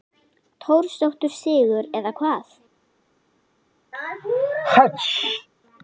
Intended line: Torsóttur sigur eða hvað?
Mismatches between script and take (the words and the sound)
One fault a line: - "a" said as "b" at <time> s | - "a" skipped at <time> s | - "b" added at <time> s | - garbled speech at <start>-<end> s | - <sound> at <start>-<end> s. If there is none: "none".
- sneeze at 3.9-5.5 s